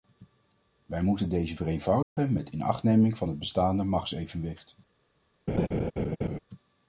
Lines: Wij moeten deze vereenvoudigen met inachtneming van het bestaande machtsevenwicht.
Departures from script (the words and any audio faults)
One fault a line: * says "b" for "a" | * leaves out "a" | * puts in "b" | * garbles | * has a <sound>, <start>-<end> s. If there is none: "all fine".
* has a dropout, 2.0-2.2 s
* has a laugh, 5.5-6.4 s